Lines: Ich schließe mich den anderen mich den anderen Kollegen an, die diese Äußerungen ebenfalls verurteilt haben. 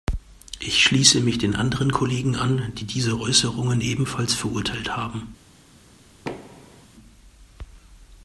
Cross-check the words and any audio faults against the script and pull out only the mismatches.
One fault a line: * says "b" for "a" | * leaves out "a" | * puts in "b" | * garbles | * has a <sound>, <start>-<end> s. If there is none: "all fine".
* leaves out "mich den anderen"
* has a thud, 6.2-6.9 s